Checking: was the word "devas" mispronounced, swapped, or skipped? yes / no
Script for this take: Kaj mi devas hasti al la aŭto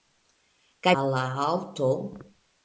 yes